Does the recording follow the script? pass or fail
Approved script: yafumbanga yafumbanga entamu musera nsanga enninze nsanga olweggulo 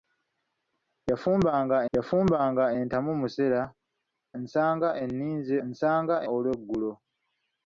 pass